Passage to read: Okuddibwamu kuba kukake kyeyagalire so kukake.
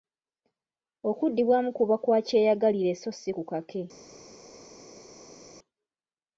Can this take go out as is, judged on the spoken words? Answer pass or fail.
fail